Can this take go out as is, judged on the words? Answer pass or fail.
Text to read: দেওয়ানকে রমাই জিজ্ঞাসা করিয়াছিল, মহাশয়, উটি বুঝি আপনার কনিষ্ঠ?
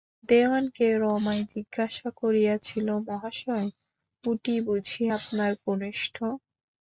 pass